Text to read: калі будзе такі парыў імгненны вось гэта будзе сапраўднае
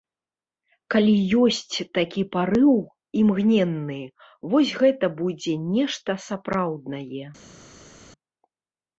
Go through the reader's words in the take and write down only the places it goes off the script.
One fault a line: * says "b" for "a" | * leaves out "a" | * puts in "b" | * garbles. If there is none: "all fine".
* says "ёсць" for "будзе"
* puts in "нешта"